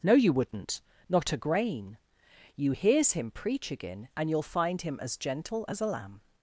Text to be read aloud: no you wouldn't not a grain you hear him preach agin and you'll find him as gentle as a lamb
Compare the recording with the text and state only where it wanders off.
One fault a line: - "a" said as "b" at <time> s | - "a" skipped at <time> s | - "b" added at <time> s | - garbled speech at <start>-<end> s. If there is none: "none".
- "hear" said as "hears" at 2.7 s